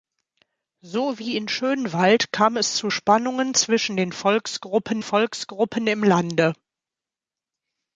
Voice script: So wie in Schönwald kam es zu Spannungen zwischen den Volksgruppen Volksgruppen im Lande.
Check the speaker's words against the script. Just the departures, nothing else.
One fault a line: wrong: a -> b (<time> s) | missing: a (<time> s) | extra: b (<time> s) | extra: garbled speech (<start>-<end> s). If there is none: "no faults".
no faults